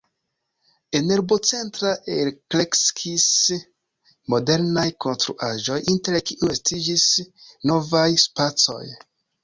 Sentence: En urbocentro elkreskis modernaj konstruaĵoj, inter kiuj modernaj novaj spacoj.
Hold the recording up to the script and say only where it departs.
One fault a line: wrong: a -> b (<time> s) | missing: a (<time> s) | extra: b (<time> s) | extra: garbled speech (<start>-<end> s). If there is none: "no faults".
wrong: modernaj -> estiĝis (6.6 s)